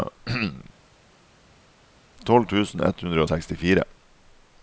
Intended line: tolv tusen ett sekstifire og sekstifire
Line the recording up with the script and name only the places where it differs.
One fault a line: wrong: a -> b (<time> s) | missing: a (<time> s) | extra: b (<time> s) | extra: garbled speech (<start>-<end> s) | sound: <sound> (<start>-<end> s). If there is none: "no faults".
wrong: sekstifire -> hundre (3.0 s)